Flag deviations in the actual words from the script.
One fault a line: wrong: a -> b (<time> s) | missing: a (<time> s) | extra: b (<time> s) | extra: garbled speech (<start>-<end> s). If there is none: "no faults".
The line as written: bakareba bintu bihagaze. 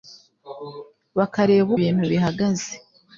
no faults